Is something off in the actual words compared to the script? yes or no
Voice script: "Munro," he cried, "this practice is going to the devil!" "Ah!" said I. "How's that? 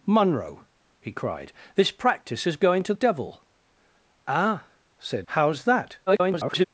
yes